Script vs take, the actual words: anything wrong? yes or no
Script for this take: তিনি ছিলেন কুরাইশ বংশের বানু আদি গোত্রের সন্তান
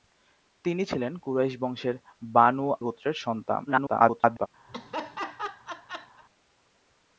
yes